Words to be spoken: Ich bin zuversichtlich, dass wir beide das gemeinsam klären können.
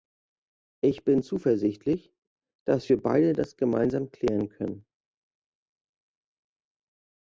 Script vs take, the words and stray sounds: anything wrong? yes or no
no